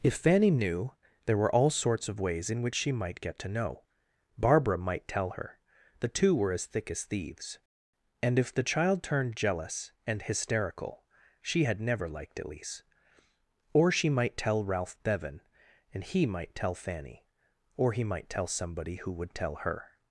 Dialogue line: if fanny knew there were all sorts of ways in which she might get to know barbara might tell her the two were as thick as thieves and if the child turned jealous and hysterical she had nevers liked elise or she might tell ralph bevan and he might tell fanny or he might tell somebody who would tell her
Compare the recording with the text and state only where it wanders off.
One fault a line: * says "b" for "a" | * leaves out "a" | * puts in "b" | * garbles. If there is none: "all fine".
* says "never" for "nevers"